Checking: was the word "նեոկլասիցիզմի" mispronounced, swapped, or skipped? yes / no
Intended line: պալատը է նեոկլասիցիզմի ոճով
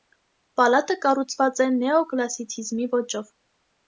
no